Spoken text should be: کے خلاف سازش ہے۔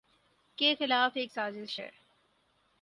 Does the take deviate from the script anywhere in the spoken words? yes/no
yes